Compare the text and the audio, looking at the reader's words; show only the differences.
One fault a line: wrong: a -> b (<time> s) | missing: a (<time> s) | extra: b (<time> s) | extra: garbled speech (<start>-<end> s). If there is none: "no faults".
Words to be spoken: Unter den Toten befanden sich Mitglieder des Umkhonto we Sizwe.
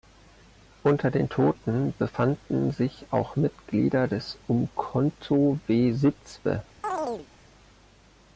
extra: auch (3.1 s)